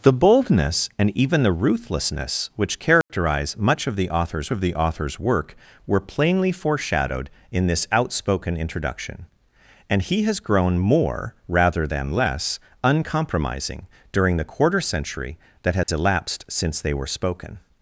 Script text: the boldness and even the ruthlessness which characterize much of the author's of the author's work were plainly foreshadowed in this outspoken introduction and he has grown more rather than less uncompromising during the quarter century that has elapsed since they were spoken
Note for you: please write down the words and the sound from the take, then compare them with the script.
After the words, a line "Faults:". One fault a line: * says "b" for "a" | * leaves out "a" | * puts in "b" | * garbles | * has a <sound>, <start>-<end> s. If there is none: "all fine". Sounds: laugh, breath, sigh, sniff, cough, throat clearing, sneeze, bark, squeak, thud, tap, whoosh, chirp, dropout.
the boldness and even the ruthlessness which characterize much of the author's of the author's work were plainly foreshadowed in this outspoken introduction and he has grown more rather than less uncompromising during the quarter century that has elapsed since they were spoken
Faults:
* has a dropout, 3.0-3.1 s
* has a dropout, 15.8-15.9 s